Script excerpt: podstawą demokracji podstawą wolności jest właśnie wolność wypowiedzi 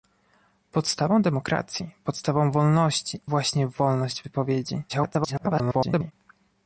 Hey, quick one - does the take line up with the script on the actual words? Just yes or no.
no